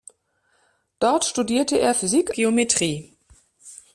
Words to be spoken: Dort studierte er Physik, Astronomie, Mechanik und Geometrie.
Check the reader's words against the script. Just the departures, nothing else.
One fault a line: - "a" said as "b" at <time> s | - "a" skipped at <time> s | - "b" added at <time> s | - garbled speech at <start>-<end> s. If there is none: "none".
- "Astronomie Mechanik und" skipped at 2.3 s